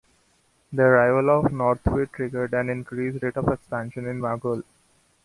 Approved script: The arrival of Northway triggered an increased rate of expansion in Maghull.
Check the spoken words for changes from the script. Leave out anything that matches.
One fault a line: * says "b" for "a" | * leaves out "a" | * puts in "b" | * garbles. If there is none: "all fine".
all fine